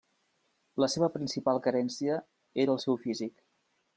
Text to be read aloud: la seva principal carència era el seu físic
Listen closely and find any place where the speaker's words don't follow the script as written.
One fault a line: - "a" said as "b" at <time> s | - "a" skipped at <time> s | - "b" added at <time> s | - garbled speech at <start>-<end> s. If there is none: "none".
none